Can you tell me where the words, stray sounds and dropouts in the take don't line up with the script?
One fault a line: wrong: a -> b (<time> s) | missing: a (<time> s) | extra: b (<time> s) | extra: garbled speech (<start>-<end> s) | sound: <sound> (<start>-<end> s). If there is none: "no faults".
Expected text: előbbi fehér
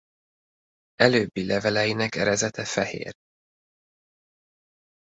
extra: leveleinek erezete (1.4 s)